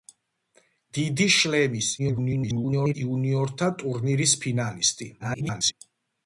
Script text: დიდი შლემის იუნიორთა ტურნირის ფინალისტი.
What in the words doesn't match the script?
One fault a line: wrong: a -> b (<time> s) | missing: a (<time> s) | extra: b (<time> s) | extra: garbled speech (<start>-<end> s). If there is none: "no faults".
extra: garbled speech (2.0-2.9 s)
extra: garbled speech (5.2-5.7 s)